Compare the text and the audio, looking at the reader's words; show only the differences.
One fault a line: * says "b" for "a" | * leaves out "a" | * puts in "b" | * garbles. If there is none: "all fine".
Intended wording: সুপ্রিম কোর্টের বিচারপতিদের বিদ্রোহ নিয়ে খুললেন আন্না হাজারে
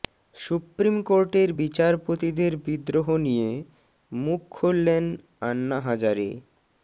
* puts in "মুখ"